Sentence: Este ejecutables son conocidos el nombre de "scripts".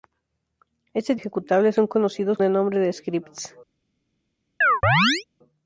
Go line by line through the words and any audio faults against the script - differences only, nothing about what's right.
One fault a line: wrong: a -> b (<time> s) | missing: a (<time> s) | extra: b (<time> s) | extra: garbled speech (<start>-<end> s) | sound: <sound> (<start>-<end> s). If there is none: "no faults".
sound: chirp (4.6-5.2 s)